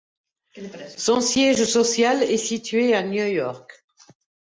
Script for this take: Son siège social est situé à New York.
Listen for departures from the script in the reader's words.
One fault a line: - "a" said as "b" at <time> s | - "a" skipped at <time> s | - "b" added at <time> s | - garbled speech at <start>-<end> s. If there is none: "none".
none